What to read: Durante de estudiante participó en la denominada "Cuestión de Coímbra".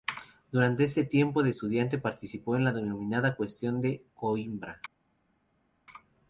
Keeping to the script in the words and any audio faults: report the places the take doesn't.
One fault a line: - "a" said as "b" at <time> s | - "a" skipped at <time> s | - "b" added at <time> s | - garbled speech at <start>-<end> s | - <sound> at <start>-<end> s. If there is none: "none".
- "este tiempo" added at 0.8 s